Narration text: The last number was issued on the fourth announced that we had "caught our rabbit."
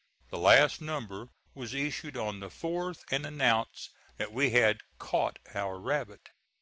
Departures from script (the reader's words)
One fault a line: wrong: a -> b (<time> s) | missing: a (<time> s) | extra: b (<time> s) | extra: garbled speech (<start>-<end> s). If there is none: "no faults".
extra: and (3.1 s)